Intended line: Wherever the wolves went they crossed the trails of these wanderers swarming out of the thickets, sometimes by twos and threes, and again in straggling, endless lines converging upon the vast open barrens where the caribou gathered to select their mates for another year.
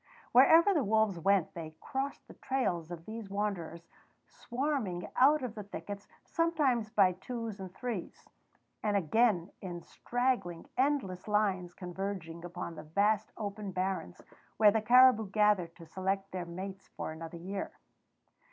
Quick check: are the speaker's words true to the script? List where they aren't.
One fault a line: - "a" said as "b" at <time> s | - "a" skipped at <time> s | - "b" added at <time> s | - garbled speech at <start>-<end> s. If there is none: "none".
none